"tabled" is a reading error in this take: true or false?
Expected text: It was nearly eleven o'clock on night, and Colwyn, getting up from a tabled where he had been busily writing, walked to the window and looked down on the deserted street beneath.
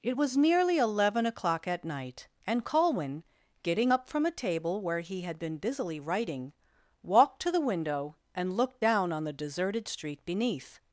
true